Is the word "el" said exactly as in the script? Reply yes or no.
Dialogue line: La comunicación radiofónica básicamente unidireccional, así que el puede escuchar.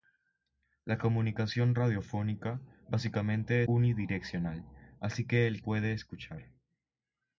yes